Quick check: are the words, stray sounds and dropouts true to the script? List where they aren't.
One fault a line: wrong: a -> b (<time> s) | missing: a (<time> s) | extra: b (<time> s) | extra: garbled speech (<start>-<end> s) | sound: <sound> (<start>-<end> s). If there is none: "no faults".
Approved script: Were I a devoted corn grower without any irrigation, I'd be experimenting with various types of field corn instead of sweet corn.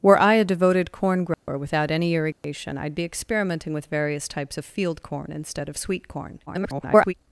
sound: dropout (1.3-1.5 s)
sound: dropout (2.3-2.4 s)
extra: garbled speech (6.5-7.1 s)